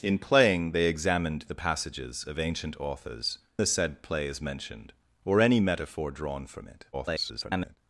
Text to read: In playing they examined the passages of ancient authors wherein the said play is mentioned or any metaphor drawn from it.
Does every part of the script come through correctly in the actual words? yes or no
no